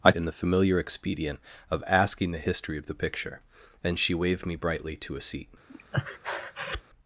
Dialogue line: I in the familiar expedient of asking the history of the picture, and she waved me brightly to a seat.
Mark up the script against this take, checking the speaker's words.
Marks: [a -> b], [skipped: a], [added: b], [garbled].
I in the familiar expedient of asking the history of the picture, and she waved me brightly to a seat.